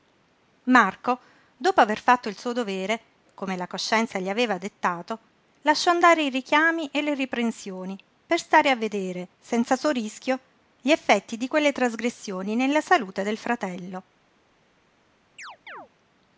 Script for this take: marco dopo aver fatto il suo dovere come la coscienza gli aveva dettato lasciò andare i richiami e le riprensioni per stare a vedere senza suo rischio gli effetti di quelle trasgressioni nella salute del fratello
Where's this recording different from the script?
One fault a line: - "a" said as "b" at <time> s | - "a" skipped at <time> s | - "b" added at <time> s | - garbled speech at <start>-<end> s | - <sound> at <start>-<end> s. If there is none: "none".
- chirp at 15.4-15.9 s